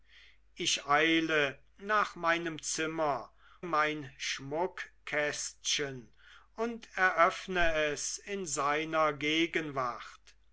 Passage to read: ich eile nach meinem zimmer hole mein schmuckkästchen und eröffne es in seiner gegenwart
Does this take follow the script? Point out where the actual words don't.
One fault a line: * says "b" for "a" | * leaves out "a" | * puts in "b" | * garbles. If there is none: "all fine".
* leaves out "hole"